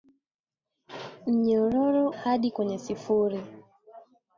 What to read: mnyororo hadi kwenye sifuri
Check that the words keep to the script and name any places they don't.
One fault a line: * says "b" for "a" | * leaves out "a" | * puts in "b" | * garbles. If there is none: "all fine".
all fine